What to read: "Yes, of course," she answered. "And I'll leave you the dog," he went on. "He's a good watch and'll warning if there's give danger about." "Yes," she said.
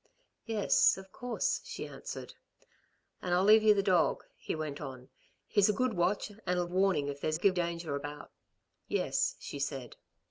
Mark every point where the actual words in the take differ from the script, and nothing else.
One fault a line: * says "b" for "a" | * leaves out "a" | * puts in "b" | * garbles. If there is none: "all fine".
all fine